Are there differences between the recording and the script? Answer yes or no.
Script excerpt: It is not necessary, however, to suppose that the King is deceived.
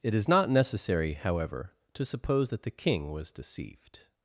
yes